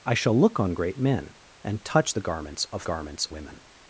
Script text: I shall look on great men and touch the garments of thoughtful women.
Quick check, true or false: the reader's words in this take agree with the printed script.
false